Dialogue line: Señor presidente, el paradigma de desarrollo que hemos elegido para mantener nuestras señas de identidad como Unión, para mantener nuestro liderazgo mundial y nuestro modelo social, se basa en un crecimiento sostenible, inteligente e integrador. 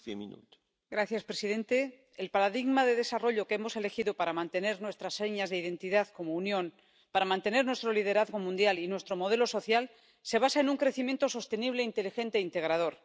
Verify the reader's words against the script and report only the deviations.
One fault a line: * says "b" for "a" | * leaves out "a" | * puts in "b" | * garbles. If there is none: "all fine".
all fine